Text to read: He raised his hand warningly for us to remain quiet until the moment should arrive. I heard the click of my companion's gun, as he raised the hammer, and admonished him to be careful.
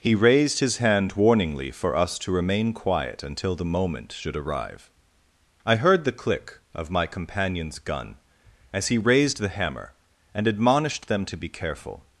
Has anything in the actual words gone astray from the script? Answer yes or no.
yes